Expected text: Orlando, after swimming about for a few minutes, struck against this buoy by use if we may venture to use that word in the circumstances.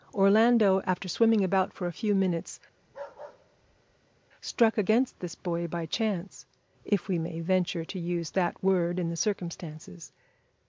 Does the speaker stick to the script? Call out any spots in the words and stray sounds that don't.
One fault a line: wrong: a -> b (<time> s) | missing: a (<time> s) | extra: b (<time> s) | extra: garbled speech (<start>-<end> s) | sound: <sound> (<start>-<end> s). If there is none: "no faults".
sound: bark (2.8-4.2 s)
wrong: use -> chance (5.9 s)